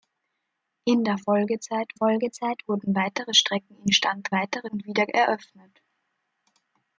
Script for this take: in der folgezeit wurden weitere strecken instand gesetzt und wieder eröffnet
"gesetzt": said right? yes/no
no